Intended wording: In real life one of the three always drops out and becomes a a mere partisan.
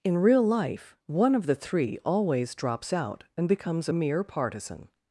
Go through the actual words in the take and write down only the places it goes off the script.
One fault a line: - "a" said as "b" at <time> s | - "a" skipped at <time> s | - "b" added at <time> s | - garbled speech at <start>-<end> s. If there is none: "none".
none